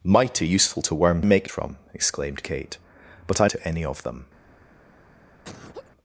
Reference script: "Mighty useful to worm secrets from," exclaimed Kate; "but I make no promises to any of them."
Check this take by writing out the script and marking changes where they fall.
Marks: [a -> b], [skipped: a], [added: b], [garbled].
"Mighty useful to worm [secrets -> make] from," exclaimed Kate; "but I [skipped: make no promises] to any of them."